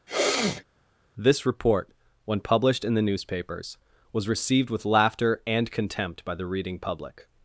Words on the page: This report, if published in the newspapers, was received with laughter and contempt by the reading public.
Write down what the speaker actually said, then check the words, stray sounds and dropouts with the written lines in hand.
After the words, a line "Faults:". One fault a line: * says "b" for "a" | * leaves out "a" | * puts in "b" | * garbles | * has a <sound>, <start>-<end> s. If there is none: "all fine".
This report, when published in the newspapers, was received with laughter and contempt by the reading public.
Faults:
* has a sneeze, 0.1-0.6 s
* says "when" for "if"